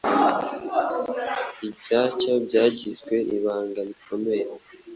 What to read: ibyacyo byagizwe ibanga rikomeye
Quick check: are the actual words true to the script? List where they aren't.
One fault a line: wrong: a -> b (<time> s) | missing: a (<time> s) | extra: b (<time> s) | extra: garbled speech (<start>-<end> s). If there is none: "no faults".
no faults